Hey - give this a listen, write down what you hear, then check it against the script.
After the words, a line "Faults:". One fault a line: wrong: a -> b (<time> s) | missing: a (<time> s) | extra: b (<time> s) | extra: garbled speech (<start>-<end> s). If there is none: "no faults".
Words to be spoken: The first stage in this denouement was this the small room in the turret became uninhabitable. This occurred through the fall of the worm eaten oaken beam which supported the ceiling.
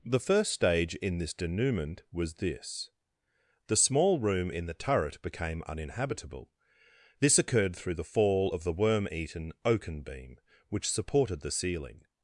The first stage in this denouement was this the small room in the turret became uninhabitable. This occurred through the fall of the worm eaten oaken beam which supported the ceiling.
Faults:
no faults